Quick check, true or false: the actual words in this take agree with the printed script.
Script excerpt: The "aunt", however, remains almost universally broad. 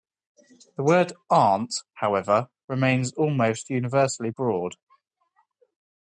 false